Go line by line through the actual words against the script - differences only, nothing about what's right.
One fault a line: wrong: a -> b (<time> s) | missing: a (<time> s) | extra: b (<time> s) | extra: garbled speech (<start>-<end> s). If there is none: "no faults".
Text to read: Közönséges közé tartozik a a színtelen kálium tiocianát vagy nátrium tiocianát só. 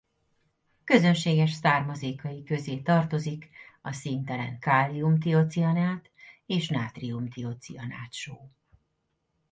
extra: származékai (1.5 s)
missing: a (3.9 s)
wrong: vagy -> és (6.5 s)